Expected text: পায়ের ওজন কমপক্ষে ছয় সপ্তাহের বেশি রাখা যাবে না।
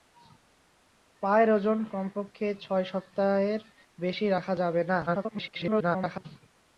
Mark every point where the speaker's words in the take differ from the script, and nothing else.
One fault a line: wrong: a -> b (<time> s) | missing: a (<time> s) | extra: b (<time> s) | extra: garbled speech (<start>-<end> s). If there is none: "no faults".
extra: garbled speech (5.1-6.3 s)